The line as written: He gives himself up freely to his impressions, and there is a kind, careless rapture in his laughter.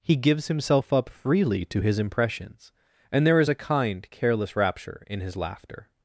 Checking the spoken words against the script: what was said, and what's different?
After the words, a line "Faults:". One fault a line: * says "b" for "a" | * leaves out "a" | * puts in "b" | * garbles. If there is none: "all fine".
He gives himself up freely to his impressions, and there is a kind, careless rapture in his laughter.
Faults:
all fine